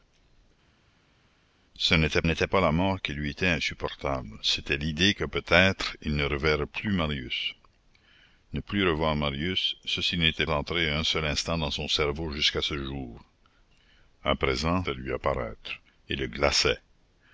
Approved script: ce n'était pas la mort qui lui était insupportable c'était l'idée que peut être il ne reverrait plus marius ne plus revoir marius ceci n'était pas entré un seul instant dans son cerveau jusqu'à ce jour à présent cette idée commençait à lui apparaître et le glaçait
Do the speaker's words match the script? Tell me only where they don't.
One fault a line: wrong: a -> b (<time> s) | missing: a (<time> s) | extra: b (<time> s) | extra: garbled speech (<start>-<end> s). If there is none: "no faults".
extra: n'était (2.2 s)
missing: pas (10.5 s)
missing: cette idée commençait (14.8 s)